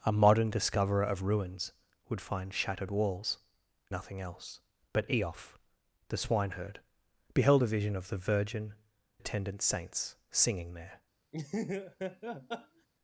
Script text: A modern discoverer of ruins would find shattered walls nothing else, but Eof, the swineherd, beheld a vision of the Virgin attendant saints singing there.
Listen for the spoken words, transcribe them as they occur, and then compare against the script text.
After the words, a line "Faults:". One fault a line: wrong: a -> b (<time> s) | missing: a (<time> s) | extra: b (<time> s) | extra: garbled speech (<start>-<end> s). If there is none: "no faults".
A modern discoverer of ruins would find shattered walls nothing else, but Eof, the swineherd, beheld a vision of the Virgin attendant saints singing there.
Faults:
no faults